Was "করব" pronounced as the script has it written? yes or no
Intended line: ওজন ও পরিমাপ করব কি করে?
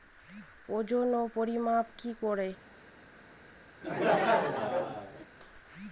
no